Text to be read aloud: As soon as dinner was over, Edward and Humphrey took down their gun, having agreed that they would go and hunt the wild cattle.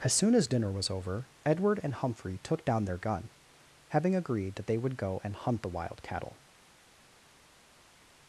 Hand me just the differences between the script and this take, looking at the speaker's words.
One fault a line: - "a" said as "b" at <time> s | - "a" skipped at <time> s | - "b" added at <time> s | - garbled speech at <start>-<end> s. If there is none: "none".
none